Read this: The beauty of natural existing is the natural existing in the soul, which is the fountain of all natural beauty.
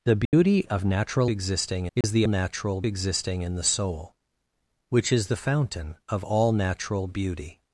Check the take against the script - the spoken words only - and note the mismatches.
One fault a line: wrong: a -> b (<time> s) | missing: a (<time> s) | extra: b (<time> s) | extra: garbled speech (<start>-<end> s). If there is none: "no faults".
no faults